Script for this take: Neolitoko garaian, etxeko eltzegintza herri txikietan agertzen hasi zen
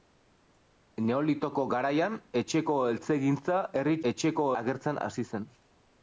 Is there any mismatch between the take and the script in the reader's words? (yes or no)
yes